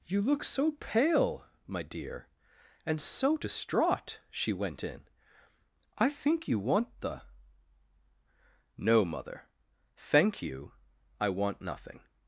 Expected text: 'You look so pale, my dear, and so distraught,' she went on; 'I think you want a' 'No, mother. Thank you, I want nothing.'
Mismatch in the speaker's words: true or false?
true